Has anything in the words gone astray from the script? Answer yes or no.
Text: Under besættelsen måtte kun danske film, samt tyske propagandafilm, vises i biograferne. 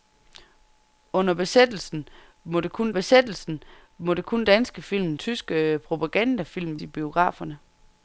yes